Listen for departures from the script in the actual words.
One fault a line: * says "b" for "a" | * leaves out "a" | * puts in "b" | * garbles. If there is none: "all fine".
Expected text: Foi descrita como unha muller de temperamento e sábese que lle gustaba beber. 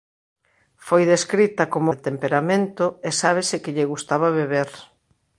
* leaves out "unha muller"